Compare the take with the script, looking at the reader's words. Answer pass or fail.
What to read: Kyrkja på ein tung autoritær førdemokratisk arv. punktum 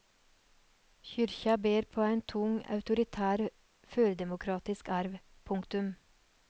fail